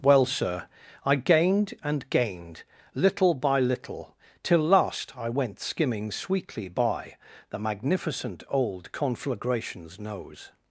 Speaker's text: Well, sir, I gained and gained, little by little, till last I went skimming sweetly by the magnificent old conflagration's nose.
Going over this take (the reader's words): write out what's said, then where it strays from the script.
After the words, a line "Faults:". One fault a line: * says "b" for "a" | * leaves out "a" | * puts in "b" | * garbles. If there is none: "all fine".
Well, sir, I gained and gained, little by little, till last I went skimming sweetly by the magnificent old conflagration's nose.
Faults:
all fine